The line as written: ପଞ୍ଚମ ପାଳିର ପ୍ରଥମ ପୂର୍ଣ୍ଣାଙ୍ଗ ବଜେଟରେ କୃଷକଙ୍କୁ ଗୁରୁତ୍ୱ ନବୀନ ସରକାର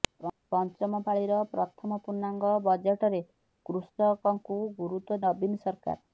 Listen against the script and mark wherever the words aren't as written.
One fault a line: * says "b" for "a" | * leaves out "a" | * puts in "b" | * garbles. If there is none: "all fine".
all fine